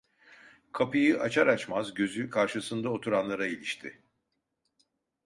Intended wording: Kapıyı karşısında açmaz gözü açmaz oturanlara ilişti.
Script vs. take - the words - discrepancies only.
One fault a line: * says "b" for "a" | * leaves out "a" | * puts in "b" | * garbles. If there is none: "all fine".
* says "açar" for "karşısında"
* says "karşısında" for "açmaz"